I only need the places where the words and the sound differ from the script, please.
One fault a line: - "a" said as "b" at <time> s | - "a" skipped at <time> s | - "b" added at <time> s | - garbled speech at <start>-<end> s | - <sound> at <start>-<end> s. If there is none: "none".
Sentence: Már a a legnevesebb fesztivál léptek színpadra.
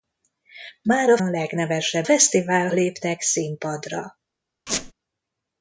- squeak at 4.7-4.9 s